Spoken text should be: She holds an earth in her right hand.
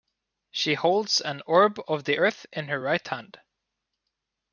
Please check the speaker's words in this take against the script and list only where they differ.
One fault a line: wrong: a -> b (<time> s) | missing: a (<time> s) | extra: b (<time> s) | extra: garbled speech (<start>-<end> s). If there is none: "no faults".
extra: orb of the (1.4 s)